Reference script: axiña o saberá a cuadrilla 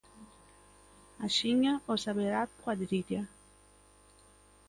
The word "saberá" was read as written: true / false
true